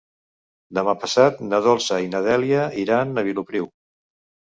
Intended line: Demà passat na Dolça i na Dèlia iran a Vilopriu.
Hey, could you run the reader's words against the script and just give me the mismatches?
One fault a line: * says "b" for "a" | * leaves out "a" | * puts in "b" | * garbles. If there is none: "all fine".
all fine